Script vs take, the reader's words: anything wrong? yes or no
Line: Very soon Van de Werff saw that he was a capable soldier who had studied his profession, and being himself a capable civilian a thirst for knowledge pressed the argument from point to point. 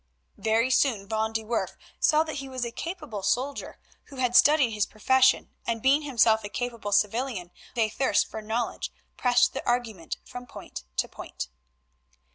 no